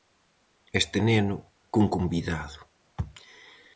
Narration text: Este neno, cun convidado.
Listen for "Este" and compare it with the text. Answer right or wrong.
right